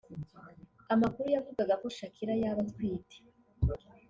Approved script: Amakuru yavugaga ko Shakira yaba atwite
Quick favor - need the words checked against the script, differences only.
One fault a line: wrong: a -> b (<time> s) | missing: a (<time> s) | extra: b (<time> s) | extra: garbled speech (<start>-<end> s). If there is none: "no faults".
no faults